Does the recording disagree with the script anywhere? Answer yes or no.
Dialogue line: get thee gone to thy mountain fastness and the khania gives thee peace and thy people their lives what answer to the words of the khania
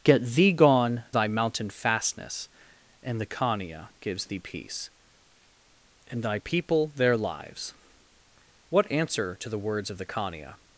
yes